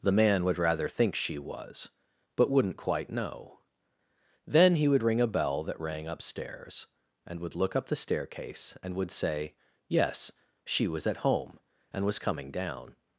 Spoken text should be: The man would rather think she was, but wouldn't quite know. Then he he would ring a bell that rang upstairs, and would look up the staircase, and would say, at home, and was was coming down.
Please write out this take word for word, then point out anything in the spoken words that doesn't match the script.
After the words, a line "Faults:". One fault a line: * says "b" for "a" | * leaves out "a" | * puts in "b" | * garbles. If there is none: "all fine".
The man would rather think she was, but wouldn't quite know. Then he would ring a bell that rang upstairs, and would look up the staircase, and would say, yes, she was at home, and was coming down.
Faults:
* leaves out "he"
* puts in "yes she was"
* leaves out "was"